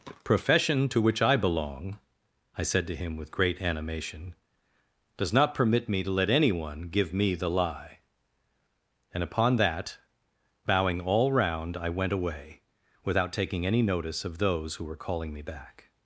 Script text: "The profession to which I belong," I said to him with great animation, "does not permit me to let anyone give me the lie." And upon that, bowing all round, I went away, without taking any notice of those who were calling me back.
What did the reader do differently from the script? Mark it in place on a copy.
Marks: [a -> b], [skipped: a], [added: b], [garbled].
"The profession to which I belong," I said to him with great animation, "does not permit me to let anyone give me the lie." And upon that, bowing all round, I went away, without taking any notice of those who were calling me back.